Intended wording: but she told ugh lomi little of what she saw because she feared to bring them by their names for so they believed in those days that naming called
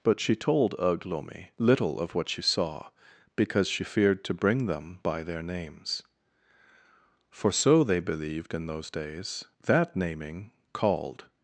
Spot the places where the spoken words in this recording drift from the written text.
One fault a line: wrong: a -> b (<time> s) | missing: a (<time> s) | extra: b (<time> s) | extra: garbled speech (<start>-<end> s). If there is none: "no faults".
no faults